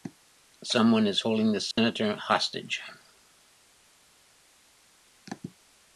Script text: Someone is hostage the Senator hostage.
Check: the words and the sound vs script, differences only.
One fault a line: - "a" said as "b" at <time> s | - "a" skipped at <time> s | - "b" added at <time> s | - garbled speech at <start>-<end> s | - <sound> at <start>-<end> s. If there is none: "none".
- "hostage" said as "holding" at 1.2 s
- dropout at 1.7-1.8 s